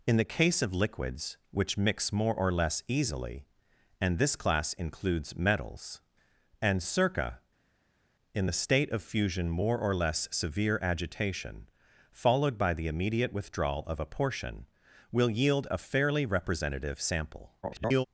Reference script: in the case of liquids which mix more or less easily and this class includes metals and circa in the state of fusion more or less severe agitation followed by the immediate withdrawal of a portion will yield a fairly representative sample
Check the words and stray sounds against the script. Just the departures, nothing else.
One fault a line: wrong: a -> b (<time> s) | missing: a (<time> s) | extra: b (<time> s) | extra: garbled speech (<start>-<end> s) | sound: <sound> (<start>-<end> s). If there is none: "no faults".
extra: garbled speech (17.6-18.1 s)